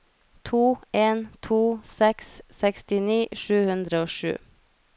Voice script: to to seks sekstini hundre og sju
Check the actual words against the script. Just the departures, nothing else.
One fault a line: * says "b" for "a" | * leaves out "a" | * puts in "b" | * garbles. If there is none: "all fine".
* puts in "en"
* puts in "sju"